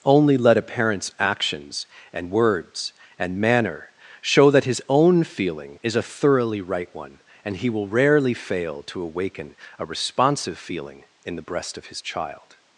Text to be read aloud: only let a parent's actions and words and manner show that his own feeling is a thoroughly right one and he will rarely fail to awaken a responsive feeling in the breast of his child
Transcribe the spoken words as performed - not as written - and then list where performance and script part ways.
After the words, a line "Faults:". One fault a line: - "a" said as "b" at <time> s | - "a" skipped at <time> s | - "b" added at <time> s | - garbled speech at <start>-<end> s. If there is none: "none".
only let a parent's actions and words and manner show that his own feeling is a thoroughly right one and he will rarely fail to awaken a responsive feeling in the breast of his child
Faults:
none